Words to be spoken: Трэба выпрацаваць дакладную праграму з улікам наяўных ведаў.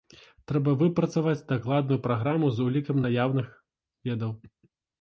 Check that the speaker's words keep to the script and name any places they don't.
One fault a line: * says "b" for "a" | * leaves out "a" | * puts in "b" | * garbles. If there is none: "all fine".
all fine